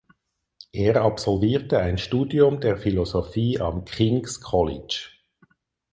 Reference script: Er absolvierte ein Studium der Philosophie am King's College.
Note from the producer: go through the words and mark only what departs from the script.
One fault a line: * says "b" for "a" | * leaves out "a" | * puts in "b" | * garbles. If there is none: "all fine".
all fine